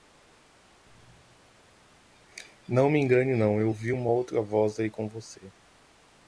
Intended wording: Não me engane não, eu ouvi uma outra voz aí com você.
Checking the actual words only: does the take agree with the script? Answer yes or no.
yes